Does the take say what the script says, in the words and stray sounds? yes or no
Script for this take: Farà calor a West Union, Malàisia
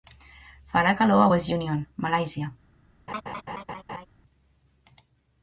no